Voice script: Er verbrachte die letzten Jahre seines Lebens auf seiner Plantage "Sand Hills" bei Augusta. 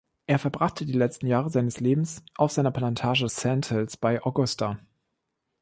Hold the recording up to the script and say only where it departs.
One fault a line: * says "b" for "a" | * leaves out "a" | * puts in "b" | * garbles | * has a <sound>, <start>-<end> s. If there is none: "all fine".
all fine